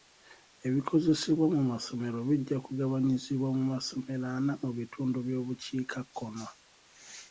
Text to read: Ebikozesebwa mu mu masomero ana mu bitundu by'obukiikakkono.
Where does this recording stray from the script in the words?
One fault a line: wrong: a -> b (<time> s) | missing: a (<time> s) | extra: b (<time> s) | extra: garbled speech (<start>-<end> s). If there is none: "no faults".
extra: masomero bijja kugabanyizibwa (1.7 s)